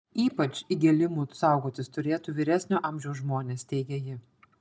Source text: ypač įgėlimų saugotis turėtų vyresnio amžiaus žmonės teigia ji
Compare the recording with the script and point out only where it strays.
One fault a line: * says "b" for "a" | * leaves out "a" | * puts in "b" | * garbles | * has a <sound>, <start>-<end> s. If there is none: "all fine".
all fine